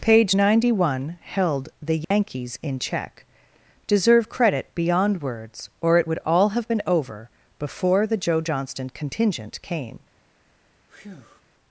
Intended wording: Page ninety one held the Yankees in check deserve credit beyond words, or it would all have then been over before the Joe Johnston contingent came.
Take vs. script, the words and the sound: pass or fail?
fail